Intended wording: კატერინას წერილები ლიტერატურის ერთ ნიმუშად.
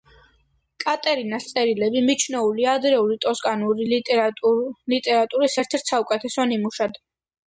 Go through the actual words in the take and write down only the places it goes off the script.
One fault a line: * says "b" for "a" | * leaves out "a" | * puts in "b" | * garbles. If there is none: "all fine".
* puts in "მიჩნეულია ადრეული ტოსკანური"
* puts in "ერთ საუკეთესო"